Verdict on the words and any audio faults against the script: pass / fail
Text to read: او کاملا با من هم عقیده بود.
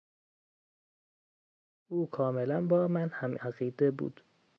pass